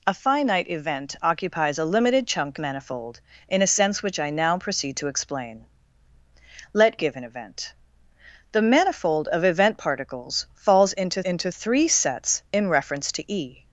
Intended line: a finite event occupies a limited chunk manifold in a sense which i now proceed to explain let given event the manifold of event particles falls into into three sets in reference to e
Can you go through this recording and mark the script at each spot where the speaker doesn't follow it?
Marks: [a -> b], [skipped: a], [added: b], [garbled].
a finite event occupies a limited chunk manifold in a sense which i now proceed to explain let given event the manifold of event particles falls into into three sets in reference to e